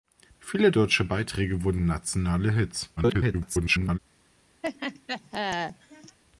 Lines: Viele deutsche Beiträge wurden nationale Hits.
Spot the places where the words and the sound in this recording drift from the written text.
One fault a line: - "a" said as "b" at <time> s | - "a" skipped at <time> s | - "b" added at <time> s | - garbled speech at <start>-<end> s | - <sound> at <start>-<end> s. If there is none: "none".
- garbled speech at 3.0-4.0 s
- laugh at 4.6-6.2 s